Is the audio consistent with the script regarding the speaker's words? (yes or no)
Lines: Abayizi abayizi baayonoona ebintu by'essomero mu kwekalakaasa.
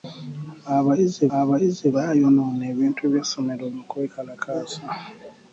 yes